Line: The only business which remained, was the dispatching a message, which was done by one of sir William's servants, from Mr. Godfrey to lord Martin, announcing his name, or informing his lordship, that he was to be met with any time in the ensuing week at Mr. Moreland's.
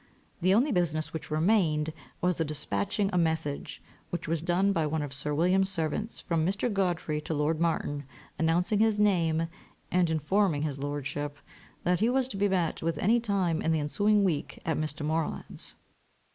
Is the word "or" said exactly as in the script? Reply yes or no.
no